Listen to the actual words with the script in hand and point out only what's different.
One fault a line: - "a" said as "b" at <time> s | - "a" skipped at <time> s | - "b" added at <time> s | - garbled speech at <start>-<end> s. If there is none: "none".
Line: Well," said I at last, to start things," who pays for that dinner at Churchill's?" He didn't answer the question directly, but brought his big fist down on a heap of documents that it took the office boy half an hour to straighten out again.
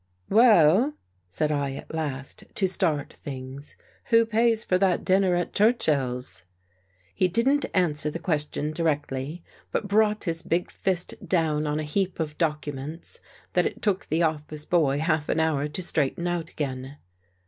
none